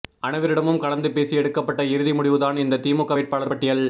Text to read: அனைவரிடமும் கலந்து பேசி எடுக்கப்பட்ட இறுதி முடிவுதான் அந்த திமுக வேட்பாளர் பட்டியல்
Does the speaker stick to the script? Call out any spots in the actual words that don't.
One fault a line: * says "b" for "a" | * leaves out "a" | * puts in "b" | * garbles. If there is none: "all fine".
* says "இந்த" for "அந்த"